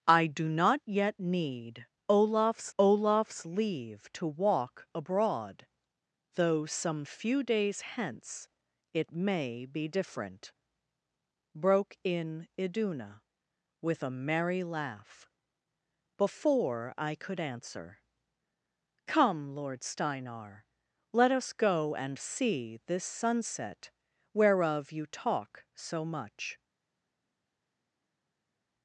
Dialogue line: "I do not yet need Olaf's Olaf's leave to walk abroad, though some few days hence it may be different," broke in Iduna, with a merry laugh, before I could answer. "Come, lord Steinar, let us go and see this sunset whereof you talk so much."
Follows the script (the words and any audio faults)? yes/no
yes